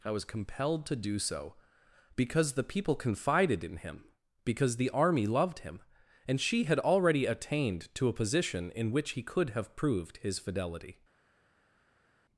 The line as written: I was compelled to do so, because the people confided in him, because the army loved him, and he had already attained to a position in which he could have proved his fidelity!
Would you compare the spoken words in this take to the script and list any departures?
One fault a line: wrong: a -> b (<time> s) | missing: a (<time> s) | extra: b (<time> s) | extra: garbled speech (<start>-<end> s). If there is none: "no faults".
wrong: he -> she (6.4 s)